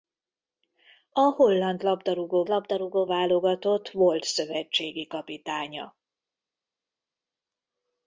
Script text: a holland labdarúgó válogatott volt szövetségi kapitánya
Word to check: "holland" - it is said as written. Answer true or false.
true